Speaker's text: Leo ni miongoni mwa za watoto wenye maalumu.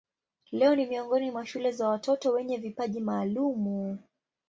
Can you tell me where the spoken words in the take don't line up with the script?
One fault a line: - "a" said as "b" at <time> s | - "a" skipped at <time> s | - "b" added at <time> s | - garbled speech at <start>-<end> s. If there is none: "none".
- "shule" added at 1.4 s
- "vipaji" added at 2.6 s